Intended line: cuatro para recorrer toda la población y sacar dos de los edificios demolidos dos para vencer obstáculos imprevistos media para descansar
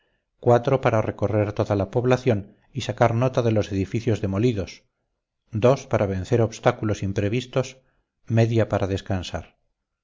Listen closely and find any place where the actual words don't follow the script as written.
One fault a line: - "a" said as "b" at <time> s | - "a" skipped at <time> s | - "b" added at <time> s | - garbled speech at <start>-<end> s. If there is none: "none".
- "dos" said as "nota" at 3.1 s